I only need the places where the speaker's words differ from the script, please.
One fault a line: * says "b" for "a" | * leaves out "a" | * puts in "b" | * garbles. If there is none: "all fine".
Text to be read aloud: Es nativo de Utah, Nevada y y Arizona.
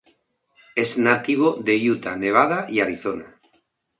* leaves out "y"